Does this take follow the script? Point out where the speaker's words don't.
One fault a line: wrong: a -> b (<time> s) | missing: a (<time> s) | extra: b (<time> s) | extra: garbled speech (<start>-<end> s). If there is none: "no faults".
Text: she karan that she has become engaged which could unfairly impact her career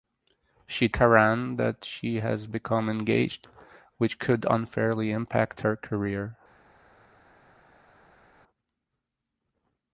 no faults